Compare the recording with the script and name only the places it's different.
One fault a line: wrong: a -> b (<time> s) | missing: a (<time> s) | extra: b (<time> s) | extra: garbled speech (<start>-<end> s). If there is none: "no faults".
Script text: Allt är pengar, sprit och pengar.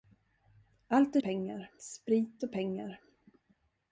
no faults